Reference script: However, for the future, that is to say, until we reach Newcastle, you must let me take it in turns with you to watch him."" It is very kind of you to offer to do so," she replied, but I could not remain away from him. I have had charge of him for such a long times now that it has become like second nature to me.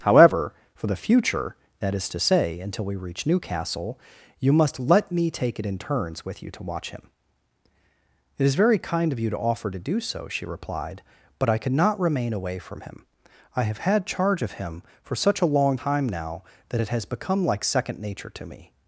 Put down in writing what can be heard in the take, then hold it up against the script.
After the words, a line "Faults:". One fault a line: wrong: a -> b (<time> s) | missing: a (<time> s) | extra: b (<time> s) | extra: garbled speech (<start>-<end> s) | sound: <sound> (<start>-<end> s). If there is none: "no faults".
However, for the future, that is to say, until we reach Newcastle, you must let me take it in turns with you to watch him."" It is very kind of you to offer to do so," she replied, but I could not remain away from him. I have had charge of him for such a long time now that it has become like second nature to me.
Faults:
wrong: times -> time (15.7 s)